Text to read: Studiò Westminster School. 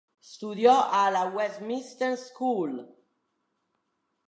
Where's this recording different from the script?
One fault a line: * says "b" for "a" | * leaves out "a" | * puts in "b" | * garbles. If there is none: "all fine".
* puts in "alla"